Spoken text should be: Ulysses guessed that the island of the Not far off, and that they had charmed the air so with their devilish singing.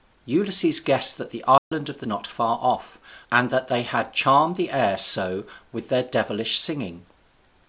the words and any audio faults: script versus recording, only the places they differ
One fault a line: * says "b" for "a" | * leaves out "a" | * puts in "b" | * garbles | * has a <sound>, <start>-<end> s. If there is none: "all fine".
* has a dropout, 1.6-1.7 s